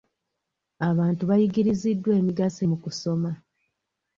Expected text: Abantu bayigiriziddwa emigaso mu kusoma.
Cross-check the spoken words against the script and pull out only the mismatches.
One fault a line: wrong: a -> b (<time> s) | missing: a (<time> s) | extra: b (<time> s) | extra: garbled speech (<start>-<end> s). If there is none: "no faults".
no faults